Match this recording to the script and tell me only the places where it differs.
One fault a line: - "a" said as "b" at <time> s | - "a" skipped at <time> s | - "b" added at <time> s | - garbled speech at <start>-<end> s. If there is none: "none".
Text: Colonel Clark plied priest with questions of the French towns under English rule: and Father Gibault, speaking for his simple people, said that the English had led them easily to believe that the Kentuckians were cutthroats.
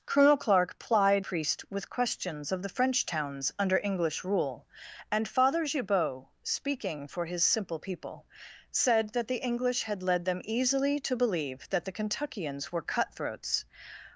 none